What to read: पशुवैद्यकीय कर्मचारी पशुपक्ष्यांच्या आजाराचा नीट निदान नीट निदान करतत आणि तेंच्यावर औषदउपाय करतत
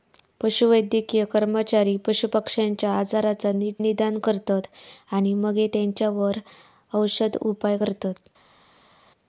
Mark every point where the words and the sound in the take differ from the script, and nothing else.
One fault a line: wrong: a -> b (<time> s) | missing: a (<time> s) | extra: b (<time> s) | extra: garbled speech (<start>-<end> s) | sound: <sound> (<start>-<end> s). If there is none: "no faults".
missing: नीट निदान (4.2 s)
extra: मगे (5.4 s)